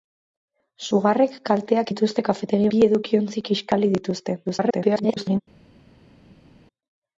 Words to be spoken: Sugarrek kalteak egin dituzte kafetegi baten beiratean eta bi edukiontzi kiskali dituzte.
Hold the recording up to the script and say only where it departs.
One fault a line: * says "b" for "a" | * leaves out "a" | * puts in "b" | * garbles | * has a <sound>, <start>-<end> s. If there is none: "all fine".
* leaves out "egin"
* leaves out "baten beiratean eta"
* garbles